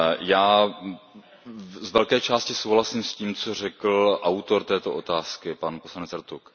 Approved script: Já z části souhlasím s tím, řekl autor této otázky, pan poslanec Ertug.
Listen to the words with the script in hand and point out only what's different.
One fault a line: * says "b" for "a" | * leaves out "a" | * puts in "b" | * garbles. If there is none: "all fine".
* puts in "velké"
* puts in "co"